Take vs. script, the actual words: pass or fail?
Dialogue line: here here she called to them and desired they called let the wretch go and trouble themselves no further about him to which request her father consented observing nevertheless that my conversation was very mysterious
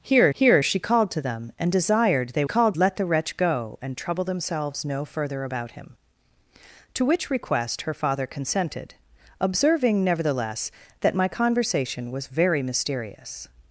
pass